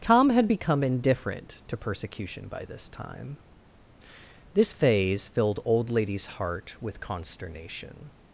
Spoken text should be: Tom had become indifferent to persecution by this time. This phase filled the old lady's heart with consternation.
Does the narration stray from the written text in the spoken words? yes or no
yes